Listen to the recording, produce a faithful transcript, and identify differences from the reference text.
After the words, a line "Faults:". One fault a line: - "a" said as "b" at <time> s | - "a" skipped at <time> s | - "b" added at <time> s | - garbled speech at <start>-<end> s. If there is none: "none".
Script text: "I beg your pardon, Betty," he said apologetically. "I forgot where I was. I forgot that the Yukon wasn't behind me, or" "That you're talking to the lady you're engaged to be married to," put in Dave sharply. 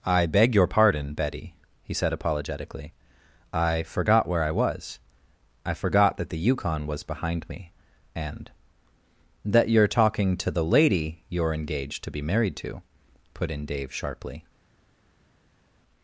"I beg your pardon, Betty," he said apologetically. "I forgot where I was. I forgot that the Yukon was behind me, and" "That you're talking to the lady you're engaged to be married to," put in Dave sharply.
Faults:
- "wasn't" said as "was" at 6.8 s
- "or" said as "and" at 8.1 s